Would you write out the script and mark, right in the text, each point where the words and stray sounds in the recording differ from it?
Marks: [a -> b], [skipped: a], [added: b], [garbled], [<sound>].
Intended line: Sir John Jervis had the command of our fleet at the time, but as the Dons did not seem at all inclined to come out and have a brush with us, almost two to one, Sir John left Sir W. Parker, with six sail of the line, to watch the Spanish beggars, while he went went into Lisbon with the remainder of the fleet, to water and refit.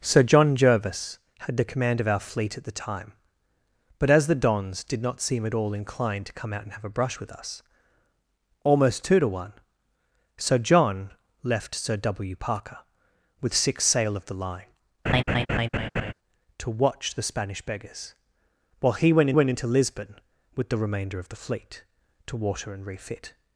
Sir John Jervis had the command of our fleet at the time, but as the Dons did not seem at all inclined to come out and have a brush with us, almost two to one, Sir John left Sir W. Parker, with six sail of the line, [laugh] to watch the Spanish beggars, while he went went into Lisbon with the remainder of the fleet, to water and refit.